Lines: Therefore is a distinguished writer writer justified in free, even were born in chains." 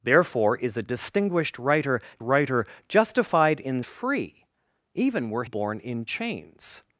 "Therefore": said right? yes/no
yes